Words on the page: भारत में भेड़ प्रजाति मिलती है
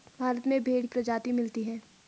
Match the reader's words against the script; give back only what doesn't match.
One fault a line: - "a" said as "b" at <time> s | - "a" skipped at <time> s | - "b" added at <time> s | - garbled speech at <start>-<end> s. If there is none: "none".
none